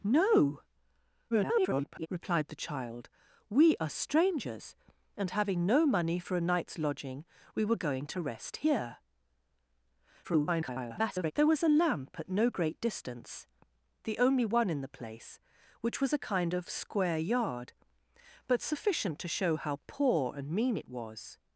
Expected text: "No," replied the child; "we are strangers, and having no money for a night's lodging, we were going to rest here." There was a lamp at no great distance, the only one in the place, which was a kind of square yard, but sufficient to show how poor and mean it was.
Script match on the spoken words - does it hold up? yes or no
no